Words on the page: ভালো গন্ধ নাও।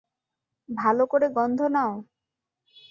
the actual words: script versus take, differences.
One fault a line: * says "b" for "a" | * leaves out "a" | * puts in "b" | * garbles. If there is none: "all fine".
* puts in "করে"